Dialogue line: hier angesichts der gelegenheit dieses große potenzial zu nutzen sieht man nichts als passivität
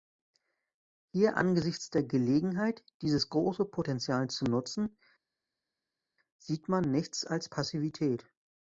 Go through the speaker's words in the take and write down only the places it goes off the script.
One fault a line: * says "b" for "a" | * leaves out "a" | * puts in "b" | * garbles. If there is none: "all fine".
all fine